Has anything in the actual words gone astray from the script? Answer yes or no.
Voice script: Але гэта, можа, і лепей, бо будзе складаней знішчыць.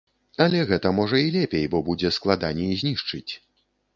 no